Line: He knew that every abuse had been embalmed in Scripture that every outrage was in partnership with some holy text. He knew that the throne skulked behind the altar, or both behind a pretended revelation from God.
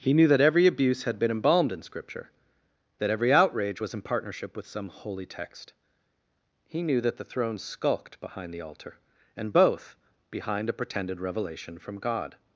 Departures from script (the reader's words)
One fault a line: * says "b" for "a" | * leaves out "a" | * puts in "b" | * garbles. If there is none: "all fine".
* says "and" for "or"